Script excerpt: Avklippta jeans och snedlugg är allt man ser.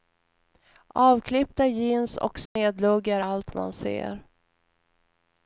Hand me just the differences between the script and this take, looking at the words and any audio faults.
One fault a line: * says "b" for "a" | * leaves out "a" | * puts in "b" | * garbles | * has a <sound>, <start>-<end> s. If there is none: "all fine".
* has a dropout, 2.5-2.6 s